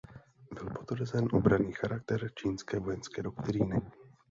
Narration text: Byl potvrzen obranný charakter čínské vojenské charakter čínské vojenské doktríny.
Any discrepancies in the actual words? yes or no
yes